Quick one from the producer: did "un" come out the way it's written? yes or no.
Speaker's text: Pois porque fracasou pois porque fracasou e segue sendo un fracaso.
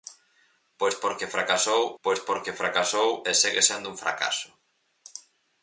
yes